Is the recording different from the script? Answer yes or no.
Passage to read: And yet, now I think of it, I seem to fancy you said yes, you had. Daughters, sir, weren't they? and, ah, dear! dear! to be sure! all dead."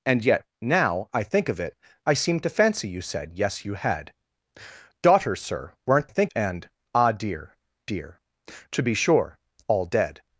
yes